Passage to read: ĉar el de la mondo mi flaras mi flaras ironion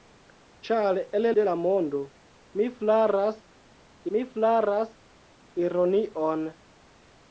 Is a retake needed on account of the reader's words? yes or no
no